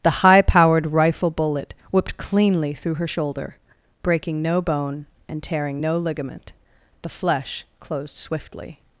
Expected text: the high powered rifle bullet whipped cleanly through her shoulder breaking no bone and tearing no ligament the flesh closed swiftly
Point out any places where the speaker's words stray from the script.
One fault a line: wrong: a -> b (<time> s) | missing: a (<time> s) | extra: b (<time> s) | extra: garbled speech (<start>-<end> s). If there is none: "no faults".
no faults